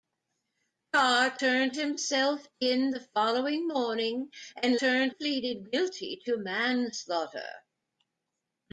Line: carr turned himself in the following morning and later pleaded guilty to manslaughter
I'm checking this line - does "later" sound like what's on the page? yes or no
no